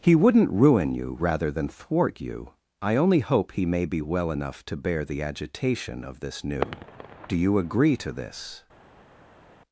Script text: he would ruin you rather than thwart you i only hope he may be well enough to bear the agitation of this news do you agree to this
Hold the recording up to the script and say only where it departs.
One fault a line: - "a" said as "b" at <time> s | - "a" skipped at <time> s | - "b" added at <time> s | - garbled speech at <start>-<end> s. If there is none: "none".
- "would" said as "wouldn't" at 0.1 s
- "news" said as "new" at 6.4 s